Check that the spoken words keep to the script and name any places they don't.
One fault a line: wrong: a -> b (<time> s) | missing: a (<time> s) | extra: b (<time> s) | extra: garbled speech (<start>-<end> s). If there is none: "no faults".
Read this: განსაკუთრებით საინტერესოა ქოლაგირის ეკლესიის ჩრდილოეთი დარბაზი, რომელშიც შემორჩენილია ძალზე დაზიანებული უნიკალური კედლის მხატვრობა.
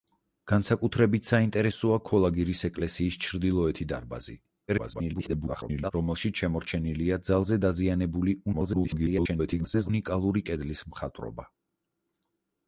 extra: garbled speech (4.7-5.9 s)
extra: garbled speech (8.5-9.9 s)